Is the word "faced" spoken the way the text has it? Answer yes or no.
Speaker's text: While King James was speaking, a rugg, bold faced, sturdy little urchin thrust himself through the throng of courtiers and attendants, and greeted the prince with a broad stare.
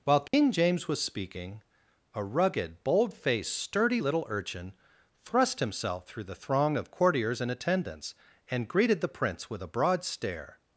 yes